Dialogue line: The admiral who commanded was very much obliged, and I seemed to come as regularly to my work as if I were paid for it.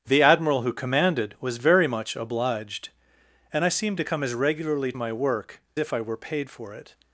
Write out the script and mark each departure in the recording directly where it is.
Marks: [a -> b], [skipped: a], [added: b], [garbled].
The admiral who commanded was very much obliged, and I seemed to come as regularly [skipped: to] my work [skipped: as] if I were paid for it.